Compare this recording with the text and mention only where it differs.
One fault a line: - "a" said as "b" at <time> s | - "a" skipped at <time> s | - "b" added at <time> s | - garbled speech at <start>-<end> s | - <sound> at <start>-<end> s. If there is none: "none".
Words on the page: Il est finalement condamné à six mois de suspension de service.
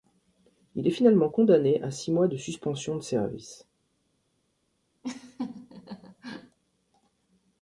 - laugh at 5.0-6.6 s